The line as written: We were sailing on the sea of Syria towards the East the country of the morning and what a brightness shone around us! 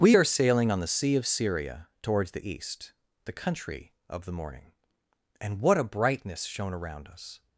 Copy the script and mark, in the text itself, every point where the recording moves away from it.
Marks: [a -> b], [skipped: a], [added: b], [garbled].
We [were -> are] sailing on the sea of Syria towards the East the country of the morning and what a brightness shone around us!